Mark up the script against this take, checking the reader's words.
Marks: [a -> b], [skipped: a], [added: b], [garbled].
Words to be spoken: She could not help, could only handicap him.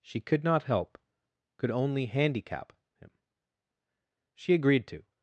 She could not help, could only handicap him. [added: She agreed to]